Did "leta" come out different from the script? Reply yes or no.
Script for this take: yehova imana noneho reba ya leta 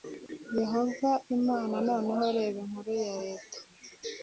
no